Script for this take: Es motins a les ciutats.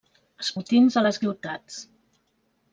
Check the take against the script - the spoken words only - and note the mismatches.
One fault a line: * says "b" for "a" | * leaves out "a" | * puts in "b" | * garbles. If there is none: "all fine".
all fine